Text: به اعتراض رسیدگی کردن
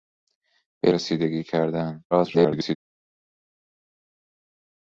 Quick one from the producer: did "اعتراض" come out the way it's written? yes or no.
no